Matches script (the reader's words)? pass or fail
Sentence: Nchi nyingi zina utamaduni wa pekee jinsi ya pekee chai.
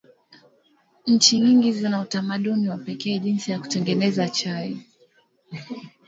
fail